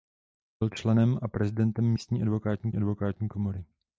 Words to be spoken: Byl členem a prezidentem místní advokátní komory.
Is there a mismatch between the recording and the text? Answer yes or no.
yes